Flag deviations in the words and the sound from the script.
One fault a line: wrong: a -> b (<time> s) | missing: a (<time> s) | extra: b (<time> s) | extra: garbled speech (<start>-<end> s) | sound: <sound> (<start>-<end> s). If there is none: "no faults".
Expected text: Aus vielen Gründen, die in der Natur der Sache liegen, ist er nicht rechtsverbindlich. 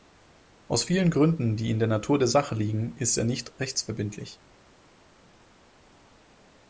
no faults